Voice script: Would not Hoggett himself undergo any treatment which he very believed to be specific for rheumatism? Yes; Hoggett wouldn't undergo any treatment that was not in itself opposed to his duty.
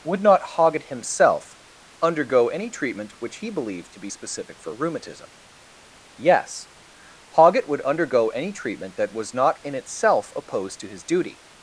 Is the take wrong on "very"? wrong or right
wrong